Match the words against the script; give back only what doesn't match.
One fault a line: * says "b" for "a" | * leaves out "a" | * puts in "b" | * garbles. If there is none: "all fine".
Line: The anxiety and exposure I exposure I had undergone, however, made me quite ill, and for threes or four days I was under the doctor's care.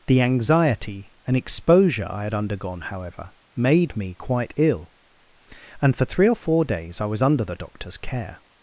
* leaves out "exposure I"
* says "three" for "threes"